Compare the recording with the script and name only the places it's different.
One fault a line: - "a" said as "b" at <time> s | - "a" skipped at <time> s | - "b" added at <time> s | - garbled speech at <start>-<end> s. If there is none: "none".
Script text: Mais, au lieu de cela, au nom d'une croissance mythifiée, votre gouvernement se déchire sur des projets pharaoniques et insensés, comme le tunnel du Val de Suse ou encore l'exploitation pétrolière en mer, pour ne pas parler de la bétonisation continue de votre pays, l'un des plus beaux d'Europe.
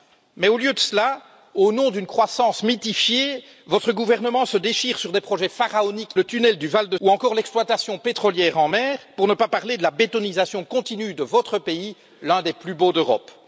- "et insensés comme" skipped at 6.2 s
- "Suse" skipped at 7.0 s